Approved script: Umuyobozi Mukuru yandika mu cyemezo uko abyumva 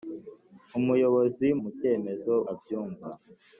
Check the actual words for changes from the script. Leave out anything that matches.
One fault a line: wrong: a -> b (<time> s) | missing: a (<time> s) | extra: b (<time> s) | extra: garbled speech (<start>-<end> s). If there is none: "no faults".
missing: Mukuru yandika (1.5 s)
missing: uko (2.3 s)